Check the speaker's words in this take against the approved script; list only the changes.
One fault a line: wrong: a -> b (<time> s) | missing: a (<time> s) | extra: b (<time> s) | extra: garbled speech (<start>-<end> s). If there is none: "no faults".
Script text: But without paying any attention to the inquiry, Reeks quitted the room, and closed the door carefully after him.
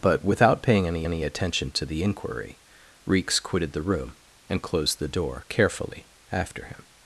extra: any (1.0 s)